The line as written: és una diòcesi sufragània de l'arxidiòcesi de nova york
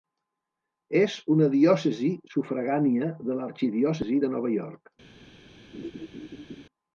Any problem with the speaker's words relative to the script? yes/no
no